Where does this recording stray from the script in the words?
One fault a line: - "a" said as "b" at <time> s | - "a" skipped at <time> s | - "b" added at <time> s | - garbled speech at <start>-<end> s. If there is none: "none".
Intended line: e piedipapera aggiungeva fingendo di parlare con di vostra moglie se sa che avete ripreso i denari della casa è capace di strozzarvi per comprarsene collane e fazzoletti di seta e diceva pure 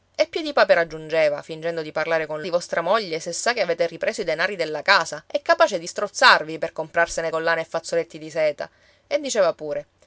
none